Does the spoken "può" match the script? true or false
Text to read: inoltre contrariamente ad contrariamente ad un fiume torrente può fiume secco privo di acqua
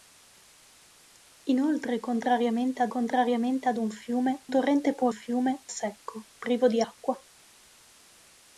true